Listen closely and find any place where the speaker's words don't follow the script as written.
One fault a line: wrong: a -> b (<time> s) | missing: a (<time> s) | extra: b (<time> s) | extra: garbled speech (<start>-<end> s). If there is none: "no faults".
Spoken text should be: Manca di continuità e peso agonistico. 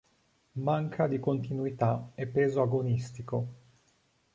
no faults